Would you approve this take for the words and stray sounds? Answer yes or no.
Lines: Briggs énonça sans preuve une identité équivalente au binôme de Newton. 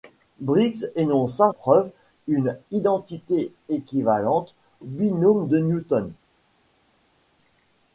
no